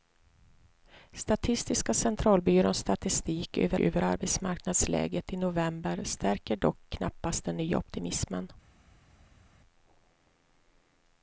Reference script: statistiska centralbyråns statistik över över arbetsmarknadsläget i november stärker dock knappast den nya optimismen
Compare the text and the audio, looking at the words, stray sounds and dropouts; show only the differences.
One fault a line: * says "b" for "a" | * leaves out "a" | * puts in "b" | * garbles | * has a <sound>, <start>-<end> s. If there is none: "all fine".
all fine